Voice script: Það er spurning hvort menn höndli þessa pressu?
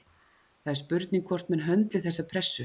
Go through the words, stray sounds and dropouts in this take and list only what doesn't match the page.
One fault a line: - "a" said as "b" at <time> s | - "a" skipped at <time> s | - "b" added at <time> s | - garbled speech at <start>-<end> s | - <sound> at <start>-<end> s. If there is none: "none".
none